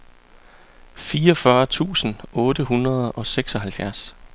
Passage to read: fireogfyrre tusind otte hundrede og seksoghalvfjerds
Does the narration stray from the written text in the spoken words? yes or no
no